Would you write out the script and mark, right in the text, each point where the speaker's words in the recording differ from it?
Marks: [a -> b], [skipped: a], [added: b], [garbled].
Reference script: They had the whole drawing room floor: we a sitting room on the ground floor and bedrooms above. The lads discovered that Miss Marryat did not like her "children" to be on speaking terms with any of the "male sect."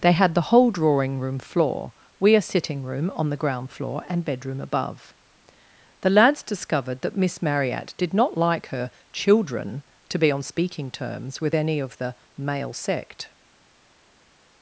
They had the whole drawing room floor: we a sitting room on the ground floor and [bedrooms -> bedroom] above. The lads discovered that Miss Marryat did not like her "children" to be on speaking terms with any of the "male sect."